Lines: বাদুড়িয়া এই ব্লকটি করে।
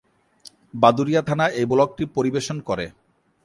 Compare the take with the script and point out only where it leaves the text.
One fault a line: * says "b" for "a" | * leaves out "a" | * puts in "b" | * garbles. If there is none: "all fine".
* puts in "থানা"
* puts in "পরিবেশন"